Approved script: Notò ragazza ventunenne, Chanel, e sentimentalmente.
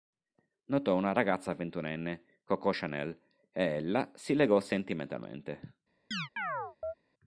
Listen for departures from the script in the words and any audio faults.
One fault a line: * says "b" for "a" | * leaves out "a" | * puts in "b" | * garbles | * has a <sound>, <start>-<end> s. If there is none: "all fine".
* puts in "una"
* puts in "Coco"
* puts in "ella si legò"
* has a chirp, 6.1-6.9 s